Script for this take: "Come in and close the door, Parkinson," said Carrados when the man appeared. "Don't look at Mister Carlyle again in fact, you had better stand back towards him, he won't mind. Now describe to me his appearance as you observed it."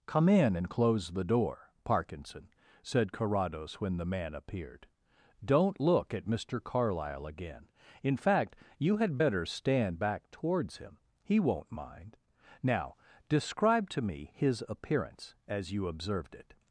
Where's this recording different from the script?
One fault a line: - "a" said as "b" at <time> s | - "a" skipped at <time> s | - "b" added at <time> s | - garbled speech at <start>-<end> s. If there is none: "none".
none